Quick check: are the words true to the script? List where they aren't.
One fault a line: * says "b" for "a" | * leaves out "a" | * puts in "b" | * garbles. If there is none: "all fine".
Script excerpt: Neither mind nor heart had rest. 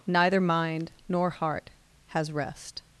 * says "has" for "had"